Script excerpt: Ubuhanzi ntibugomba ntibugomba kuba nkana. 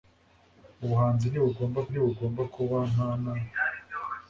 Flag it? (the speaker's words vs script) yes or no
no